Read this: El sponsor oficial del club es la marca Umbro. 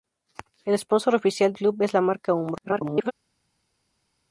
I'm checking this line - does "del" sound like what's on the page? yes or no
no